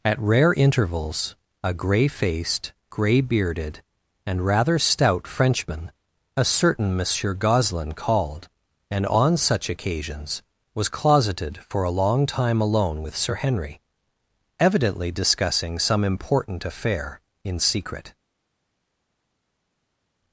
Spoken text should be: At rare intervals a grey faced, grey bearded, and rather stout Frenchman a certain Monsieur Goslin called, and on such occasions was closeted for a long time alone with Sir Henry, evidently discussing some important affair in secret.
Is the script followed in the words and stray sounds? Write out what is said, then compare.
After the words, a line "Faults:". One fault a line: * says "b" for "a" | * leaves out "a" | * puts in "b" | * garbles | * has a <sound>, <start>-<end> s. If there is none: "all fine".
At rare intervals a grey faced, grey bearded, and rather stout Frenchman a certain Monsieur Goslin called, and on such occasions was closeted for a long time alone with Sir Henry, evidently discussing some important affair in secret.
Faults:
all fine